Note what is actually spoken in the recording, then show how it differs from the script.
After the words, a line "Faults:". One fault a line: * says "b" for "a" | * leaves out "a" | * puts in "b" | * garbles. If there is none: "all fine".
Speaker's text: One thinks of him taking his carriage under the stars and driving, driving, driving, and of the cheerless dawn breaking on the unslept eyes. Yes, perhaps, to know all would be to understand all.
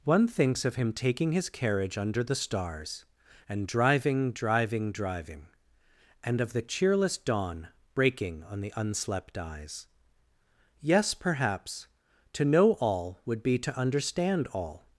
One thinks of him taking his carriage under the stars and driving, driving, driving, and of the cheerless dawn breaking on the unslept eyes. Yes, perhaps, to know all would be to understand all.
Faults:
all fine